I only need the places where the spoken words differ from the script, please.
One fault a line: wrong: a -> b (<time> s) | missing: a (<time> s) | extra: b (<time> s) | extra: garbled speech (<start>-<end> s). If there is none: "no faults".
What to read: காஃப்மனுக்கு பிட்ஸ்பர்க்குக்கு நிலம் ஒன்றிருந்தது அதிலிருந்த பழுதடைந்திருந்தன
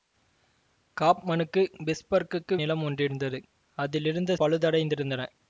no faults